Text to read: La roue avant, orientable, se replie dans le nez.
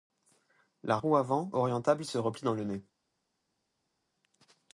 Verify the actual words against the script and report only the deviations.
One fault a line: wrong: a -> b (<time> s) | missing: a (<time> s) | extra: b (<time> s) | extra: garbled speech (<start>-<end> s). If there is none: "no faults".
no faults